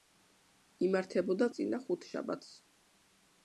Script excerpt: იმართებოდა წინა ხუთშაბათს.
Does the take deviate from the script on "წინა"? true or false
false